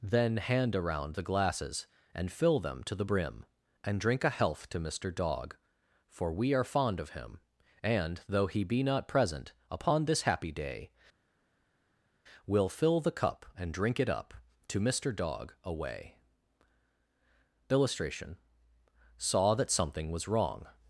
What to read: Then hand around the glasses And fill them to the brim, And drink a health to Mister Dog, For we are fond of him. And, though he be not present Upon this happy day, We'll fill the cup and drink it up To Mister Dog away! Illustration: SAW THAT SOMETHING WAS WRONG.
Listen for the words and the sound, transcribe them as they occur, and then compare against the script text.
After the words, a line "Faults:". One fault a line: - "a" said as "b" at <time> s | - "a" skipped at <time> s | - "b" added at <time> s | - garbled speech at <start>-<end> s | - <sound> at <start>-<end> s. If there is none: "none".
Then hand around the glasses And fill them to the brim, And drink a health to Mister Dog, For we are fond of him. And, though he be not present Upon this happy day, We'll fill the cup and drink it up To Mister Dog away! Illustration: SAW THAT SOMETHING WAS WRONG.
Faults:
none